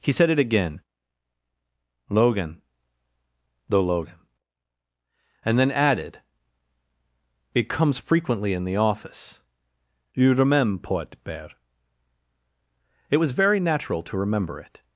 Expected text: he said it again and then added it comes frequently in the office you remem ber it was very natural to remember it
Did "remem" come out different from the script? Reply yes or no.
yes